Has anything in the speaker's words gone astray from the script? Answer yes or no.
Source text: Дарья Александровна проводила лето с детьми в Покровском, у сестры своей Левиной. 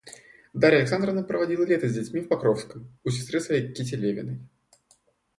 yes